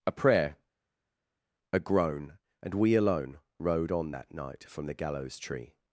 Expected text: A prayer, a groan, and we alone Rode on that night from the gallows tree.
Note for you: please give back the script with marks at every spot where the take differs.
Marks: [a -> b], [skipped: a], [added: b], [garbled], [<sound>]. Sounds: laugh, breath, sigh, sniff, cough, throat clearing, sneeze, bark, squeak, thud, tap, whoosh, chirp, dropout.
A prayer, a groan, and we alone Rode on that night from the gallows tree.